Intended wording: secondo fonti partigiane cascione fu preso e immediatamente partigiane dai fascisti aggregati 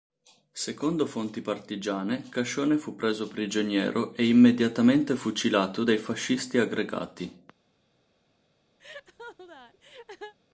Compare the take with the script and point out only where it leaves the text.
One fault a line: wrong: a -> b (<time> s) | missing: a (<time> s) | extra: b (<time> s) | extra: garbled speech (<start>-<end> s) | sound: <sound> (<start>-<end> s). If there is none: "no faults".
extra: prigioniero (3.3 s)
wrong: partigiane -> fucilato (5.1 s)
sound: laugh (8.8-10.3 s)